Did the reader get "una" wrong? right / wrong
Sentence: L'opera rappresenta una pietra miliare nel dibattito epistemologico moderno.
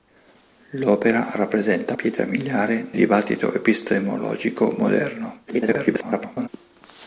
wrong